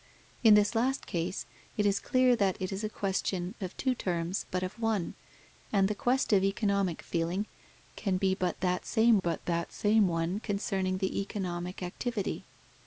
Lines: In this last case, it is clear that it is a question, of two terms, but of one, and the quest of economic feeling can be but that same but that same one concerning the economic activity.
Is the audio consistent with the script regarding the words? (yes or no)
yes